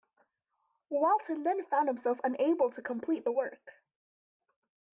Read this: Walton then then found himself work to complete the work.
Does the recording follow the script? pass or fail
fail